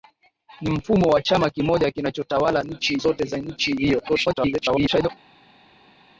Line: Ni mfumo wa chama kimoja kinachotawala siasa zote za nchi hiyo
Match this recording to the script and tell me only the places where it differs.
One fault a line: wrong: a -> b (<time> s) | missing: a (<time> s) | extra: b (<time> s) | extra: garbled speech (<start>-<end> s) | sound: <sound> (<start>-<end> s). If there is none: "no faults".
wrong: siasa -> nchi (2.6 s)
extra: garbled speech (4.1-5.1 s)